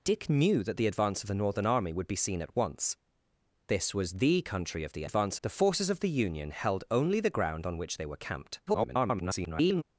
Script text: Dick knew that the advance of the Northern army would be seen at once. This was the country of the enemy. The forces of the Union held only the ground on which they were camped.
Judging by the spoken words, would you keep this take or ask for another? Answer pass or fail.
fail